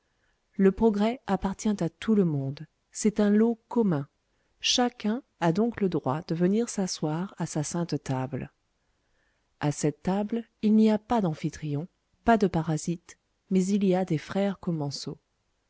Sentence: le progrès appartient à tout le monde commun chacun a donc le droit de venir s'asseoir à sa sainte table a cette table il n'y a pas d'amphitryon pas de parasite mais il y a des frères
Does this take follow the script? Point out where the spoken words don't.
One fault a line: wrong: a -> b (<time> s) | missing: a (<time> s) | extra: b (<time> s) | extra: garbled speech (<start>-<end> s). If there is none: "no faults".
extra: c'est un lot (2.9 s)